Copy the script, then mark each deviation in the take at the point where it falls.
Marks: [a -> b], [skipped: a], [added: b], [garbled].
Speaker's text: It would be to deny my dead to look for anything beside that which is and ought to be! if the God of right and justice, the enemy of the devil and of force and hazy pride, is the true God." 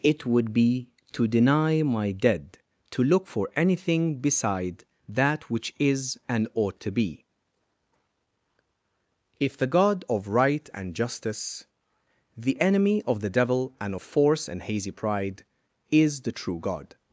It would be to deny my dead to look for anything beside that which is and ought to be! if the God of right and justice, the enemy of the devil and of force and hazy pride, is the true God."